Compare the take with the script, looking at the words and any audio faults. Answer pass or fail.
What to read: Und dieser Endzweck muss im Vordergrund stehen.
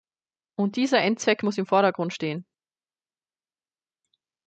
pass